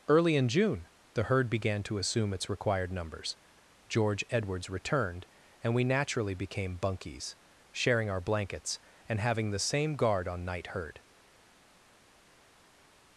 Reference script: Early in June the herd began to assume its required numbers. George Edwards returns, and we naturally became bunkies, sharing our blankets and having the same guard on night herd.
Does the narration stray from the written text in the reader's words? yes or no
yes